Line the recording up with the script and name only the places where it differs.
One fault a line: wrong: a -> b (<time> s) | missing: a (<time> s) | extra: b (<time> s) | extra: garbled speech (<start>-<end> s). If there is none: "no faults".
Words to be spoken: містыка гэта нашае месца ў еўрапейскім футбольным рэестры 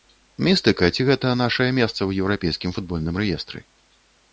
extra: ці (0.9 s)